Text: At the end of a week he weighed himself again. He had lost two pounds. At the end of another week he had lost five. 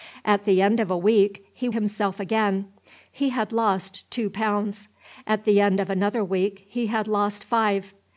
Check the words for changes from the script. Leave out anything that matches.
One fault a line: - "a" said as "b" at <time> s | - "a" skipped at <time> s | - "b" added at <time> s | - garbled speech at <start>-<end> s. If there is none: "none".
- "weighed" skipped at 1.7 s